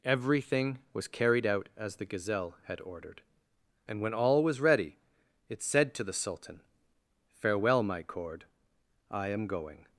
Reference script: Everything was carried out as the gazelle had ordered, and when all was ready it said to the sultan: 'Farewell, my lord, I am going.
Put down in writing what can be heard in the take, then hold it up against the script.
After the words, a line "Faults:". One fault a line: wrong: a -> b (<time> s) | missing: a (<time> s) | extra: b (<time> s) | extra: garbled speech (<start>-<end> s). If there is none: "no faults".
Everything was carried out as the gazelle had ordered, and when all was ready it said to the sultan: 'Farewell, my cord, I am going.
Faults:
wrong: lord -> cord (8.0 s)